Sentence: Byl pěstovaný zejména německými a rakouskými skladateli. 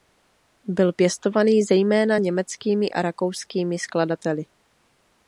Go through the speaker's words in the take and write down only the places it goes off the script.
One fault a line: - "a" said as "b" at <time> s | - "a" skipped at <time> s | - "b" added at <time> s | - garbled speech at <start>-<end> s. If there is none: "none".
none